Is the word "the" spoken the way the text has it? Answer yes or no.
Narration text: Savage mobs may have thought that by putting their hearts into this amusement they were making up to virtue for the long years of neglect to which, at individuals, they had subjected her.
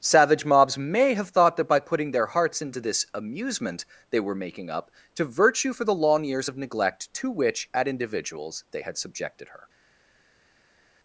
yes